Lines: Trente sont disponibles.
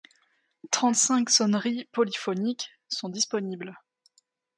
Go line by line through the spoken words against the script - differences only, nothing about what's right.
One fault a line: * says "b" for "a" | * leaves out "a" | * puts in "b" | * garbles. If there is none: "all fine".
* puts in "cinq sonneries polyphoniques"